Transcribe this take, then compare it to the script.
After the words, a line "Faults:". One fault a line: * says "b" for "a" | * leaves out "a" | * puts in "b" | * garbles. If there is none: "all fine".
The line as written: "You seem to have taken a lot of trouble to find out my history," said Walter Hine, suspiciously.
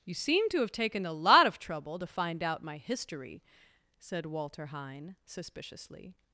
"You seem to have taken a lot of trouble to find out my history," said Walter Hine, suspiciously.
Faults:
all fine